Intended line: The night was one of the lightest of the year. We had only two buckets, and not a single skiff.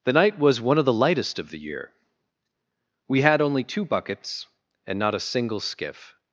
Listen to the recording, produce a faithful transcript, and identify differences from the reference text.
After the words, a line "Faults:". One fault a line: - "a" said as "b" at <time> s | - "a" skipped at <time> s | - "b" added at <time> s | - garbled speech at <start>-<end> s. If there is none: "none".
The night was one of the lightest of the year. We had only two buckets, and not a single skiff.
Faults:
none